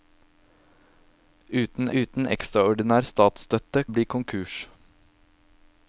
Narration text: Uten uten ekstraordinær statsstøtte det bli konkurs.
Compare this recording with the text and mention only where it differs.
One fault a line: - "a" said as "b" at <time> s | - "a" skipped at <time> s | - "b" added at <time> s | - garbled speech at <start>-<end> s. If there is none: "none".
none